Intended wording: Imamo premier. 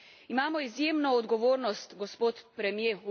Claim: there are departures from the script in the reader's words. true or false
true